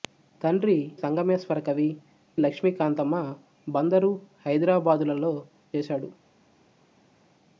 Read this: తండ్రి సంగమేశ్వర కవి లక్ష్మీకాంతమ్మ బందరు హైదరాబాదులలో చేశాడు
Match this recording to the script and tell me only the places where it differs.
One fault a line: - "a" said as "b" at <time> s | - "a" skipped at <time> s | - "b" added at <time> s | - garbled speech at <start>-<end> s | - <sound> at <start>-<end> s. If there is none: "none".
none